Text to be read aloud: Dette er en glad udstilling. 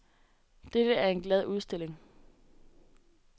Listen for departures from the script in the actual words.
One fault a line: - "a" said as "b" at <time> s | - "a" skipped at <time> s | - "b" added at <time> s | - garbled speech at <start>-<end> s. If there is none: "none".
none